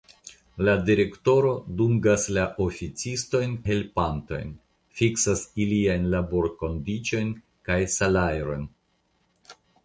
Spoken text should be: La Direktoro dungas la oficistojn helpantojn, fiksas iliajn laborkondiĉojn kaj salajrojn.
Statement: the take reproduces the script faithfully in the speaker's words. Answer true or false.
true